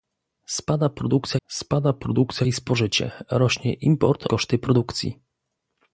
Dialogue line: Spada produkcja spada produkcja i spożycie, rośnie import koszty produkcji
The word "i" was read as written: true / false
true